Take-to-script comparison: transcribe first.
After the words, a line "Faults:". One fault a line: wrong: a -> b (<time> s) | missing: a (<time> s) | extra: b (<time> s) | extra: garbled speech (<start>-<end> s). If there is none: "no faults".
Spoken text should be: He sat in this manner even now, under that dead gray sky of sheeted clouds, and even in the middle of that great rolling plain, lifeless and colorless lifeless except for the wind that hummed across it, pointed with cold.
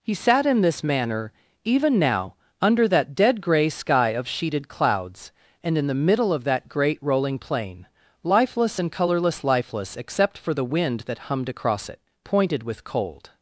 He sat in this manner even now, under that dead gray sky of sheeted clouds, and in the middle of that great rolling plain, lifeless and colorless lifeless except for the wind that hummed across it, pointed with cold.
Faults:
missing: even (5.8 s)